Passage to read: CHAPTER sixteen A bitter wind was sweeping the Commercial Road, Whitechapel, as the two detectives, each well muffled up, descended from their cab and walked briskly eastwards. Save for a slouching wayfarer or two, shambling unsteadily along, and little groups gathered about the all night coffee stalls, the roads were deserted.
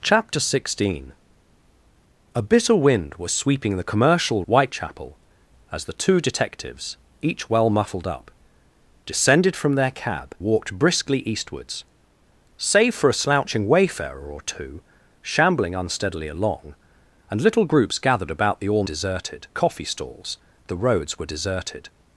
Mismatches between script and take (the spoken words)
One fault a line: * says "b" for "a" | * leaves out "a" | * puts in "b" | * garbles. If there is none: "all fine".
* leaves out "Road"
* leaves out "and"
* says "deserted" for "night"